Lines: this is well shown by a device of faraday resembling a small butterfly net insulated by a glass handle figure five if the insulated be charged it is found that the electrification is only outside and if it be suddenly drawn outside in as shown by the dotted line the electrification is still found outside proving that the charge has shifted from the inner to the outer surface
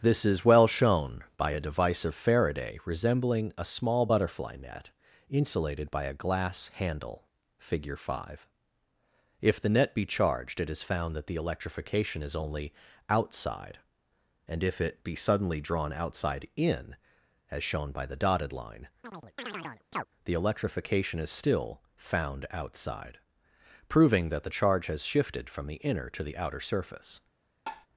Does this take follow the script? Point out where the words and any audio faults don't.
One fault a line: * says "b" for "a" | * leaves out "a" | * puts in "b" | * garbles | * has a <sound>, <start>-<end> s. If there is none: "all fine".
* says "net" for "insulated"
* has a chirp, 19.0-20.1 s
* has a tap, 27.7-27.9 s